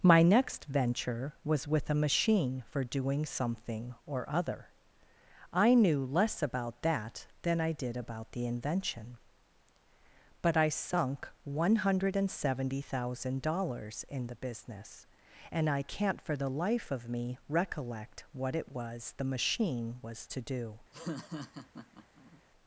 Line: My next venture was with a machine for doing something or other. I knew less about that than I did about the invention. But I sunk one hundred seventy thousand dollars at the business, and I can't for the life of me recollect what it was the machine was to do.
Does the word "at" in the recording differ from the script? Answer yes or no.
yes